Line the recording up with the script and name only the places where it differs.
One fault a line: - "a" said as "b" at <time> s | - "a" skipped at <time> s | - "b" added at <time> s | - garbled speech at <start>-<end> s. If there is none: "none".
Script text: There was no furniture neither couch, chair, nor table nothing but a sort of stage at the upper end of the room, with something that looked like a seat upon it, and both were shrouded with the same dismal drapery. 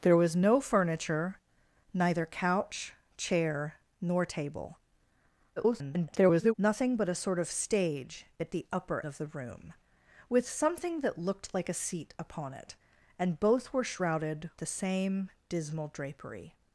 - garbled speech at 5.6-6.5 s
- "end" skipped at 9.1 s
- "with" skipped at 14.5 s